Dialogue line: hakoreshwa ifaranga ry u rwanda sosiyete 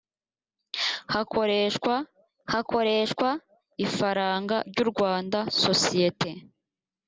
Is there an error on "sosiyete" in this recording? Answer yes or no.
no